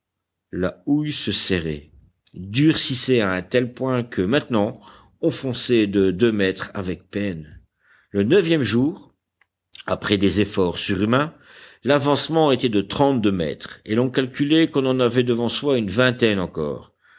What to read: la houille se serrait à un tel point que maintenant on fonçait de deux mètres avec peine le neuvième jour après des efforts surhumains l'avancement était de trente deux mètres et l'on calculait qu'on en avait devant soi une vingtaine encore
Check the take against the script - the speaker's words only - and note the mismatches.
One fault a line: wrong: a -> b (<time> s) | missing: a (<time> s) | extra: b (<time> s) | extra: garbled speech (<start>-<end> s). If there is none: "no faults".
extra: durcissait (2.3 s)